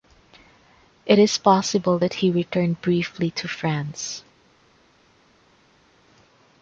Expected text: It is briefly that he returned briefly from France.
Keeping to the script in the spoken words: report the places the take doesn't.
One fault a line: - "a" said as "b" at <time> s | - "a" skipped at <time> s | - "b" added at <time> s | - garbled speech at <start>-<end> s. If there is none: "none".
- "briefly" said as "possible" at 1.4 s
- "from" said as "to" at 3.3 s